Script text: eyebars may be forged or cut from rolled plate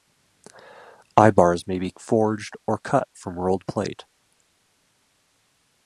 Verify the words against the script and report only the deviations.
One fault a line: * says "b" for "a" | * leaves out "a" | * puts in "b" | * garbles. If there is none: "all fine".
all fine